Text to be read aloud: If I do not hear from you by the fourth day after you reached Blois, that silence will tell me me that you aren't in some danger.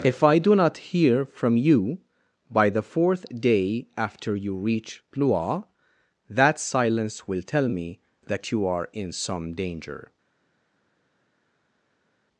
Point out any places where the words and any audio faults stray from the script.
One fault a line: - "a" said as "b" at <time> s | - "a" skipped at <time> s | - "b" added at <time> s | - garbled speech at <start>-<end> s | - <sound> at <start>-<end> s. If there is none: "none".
- "reached" said as "reach" at 4.5 s
- "me" skipped at 8.0 s
- "aren't" said as "are" at 8.6 s